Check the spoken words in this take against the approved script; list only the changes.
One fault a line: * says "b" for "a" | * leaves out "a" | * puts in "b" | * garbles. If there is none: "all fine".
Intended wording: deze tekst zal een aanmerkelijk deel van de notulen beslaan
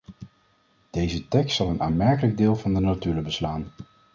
all fine